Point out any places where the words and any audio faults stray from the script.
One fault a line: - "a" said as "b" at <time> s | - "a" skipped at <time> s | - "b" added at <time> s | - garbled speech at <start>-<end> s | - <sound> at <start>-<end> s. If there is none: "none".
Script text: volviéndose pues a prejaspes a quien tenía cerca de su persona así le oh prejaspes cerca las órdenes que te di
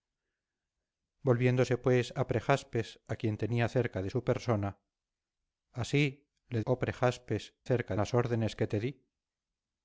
none